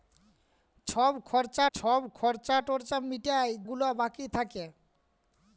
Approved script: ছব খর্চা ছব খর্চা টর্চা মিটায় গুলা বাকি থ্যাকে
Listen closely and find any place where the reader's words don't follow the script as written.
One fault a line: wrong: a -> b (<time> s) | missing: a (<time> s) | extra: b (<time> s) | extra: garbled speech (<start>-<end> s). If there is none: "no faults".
no faults